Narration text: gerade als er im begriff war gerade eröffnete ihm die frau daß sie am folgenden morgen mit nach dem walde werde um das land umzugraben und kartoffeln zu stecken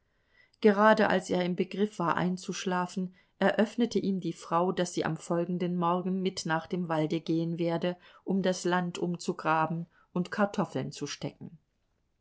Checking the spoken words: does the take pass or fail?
fail